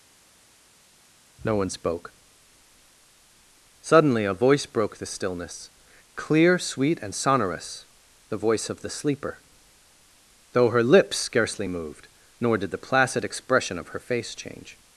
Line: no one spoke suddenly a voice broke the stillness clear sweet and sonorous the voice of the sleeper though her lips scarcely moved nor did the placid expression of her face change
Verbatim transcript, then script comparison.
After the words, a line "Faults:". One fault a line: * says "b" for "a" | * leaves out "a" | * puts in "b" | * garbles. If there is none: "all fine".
no one spoke suddenly a voice broke the stillness clear sweet and sonorous the voice of the sleeper though her lips scarcely moved nor did the placid expression of her face change
Faults:
all fine